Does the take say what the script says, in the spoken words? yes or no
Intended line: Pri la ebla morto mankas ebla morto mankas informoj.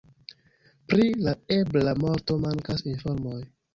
no